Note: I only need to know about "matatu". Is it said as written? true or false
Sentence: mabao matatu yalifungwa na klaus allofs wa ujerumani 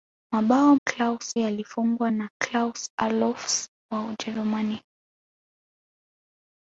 false